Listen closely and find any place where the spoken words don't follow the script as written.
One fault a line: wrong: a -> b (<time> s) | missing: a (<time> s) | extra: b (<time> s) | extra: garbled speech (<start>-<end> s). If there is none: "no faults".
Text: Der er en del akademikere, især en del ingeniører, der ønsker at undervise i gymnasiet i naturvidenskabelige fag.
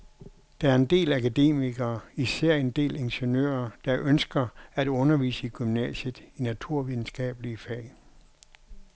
no faults